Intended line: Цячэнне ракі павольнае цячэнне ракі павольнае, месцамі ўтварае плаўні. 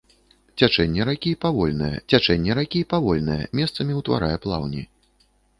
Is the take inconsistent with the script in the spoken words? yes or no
no